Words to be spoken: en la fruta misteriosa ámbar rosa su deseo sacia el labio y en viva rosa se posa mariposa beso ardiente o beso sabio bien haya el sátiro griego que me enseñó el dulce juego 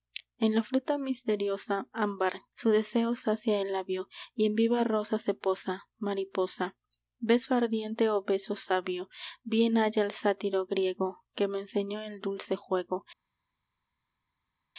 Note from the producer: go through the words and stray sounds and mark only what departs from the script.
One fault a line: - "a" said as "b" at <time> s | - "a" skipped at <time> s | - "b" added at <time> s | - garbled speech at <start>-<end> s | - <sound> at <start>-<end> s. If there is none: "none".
- "rosa" skipped at 2.4 s